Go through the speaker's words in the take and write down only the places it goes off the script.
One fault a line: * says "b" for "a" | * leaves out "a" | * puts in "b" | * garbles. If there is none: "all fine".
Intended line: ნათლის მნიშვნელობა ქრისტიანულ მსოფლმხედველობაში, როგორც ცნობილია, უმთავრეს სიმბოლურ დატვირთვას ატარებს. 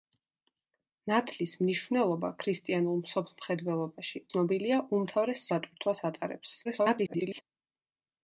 * leaves out "როგორც"
* leaves out "სიმბოლურ"
* garbles